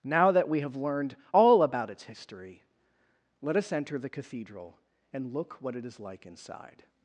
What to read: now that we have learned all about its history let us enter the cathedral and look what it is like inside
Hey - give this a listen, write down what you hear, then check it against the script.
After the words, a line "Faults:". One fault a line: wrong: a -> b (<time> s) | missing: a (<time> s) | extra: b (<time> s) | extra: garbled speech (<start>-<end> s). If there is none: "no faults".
now that we have learned all about its history let us enter the cathedral and look what it is like inside
Faults:
no faults